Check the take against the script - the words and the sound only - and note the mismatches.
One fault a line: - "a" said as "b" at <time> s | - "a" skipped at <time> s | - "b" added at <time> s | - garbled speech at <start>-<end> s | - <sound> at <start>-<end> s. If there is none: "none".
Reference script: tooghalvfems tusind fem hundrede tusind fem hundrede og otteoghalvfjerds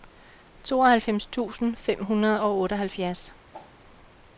- "tusind fem hundrede" skipped at 2.4 s
- whoosh at 3.5-3.8 s